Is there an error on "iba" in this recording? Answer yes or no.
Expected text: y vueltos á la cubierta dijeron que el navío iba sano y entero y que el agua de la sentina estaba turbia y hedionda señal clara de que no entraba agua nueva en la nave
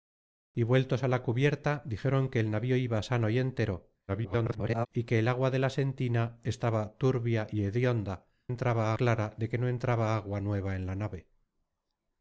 no